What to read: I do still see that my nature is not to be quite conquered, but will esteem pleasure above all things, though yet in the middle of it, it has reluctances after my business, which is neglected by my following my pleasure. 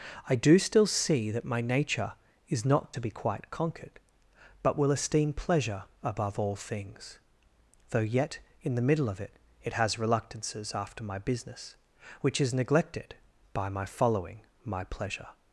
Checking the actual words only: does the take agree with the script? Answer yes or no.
yes